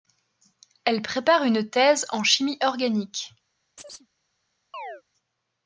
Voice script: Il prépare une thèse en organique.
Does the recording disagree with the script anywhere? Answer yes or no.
yes